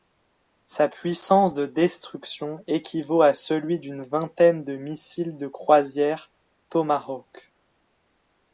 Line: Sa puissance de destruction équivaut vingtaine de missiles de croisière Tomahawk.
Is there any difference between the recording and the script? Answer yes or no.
yes